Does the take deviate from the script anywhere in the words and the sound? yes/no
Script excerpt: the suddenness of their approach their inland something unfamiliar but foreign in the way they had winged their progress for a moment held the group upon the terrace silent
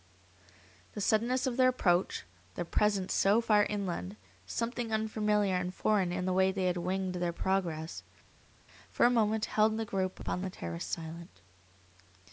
yes